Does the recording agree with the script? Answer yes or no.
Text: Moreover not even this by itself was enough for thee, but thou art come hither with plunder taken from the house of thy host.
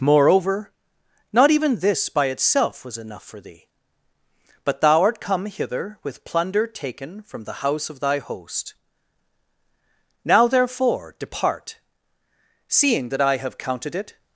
no